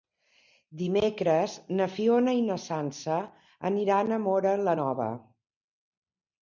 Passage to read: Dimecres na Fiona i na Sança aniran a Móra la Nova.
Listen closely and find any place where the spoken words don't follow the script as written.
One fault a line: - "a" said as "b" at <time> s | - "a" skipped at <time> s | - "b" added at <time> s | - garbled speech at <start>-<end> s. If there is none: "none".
none